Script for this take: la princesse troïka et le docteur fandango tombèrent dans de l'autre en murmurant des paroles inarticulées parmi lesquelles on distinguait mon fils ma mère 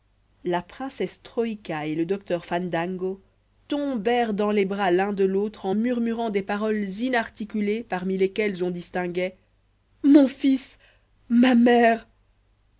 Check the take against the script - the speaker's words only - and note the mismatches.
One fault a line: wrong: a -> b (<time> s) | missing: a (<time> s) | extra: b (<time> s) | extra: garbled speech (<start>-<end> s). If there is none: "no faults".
extra: les bras l'un (4.5 s)